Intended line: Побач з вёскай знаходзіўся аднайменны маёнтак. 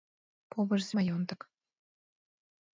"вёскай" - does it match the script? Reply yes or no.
no